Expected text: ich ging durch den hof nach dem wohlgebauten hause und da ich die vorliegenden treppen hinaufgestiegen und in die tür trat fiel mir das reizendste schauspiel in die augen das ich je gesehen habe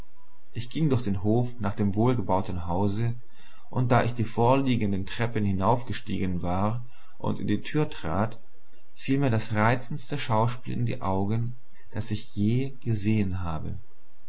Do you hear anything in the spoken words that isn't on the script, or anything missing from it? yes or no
yes